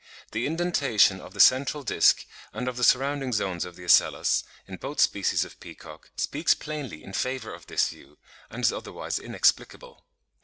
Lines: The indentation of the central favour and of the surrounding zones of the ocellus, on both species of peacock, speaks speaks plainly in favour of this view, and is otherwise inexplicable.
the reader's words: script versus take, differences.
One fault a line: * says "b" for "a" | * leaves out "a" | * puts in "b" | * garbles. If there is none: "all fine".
* says "disc" for "favour"
* says "in" for "on"
* leaves out "speaks"